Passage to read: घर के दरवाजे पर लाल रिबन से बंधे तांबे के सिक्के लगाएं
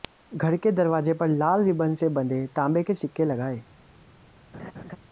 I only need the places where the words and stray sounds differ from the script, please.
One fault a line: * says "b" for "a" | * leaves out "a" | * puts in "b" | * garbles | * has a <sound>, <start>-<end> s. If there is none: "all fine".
* has a laugh, 4.5-5.0 s